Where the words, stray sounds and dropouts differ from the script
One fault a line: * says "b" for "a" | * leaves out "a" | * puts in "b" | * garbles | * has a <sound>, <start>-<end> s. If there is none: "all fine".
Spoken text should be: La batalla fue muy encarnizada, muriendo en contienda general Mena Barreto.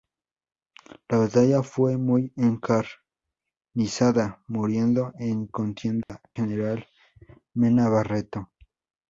* has a dropout, 6.0-6.1 s